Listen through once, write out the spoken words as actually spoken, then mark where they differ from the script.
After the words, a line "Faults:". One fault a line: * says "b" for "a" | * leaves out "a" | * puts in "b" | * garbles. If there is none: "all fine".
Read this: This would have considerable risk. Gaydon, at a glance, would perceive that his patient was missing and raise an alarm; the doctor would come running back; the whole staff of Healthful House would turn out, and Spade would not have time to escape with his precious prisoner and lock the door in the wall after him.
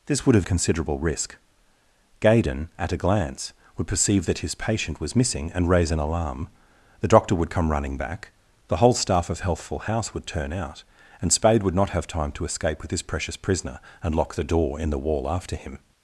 This would have considerable risk. Gaydon, at a glance, would perceive that his patient was missing and raise an alarm; the doctor would come running back; the whole staff of Healthful House would turn out, and Spade would not have time to escape with his precious prisoner and lock the door in the wall after him.
Faults:
all fine